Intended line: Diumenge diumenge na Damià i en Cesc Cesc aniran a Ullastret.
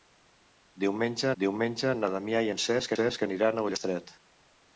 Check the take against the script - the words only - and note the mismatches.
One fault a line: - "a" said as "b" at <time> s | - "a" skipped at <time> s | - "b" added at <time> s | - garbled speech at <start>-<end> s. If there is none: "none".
none